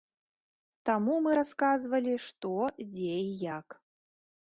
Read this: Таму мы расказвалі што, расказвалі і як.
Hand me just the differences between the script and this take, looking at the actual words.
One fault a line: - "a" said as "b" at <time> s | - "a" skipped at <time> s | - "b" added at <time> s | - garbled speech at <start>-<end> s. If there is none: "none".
- "расказвалі" said as "дзе" at 3.0 s